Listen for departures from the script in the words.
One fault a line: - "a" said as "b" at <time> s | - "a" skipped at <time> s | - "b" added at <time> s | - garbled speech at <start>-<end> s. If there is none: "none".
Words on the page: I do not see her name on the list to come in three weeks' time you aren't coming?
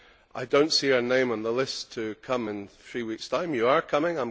- "aren't" said as "are" at 3.7 s